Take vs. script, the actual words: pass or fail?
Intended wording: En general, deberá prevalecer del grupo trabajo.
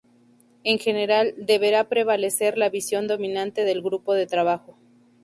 fail